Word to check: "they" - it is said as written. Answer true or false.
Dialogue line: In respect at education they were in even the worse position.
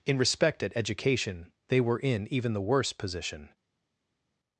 true